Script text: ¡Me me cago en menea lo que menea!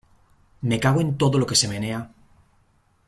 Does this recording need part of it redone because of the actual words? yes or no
yes